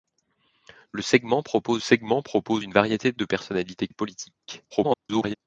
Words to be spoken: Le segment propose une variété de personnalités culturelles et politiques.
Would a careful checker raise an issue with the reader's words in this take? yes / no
yes